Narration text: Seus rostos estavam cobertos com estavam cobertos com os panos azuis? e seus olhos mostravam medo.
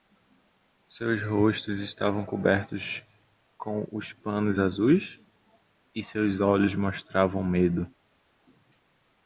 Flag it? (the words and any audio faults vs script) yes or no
yes